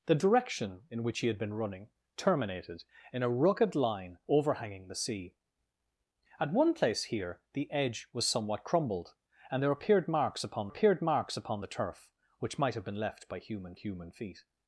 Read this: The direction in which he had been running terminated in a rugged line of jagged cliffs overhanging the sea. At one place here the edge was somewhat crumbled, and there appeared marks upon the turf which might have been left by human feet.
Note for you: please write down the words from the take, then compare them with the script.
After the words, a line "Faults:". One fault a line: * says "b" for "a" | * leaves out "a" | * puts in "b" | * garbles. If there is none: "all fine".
The direction in which he had been running terminated in a rugged line overhanging the sea. At one place here the edge was somewhat crumbled, and there appeared marks upon appeared marks upon the turf which might have been left by human human feet.
Faults:
* leaves out "of jagged cliffs"
* puts in "appeared marks upon"
* puts in "human"